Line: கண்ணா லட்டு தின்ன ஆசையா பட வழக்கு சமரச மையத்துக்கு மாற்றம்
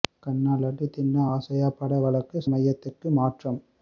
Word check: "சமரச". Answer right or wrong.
wrong